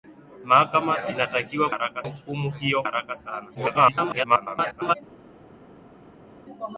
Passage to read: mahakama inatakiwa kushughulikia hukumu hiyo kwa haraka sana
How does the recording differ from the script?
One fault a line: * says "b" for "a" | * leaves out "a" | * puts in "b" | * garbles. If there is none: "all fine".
* says "haraka" for "kushughulikia"
* leaves out "kwa"
* garbles